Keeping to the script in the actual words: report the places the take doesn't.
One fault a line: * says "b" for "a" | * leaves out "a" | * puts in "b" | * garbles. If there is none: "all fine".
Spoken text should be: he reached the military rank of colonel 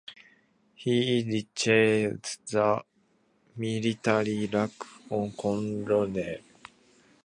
all fine